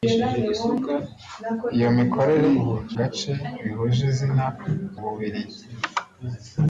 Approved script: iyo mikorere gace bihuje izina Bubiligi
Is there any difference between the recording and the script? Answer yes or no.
no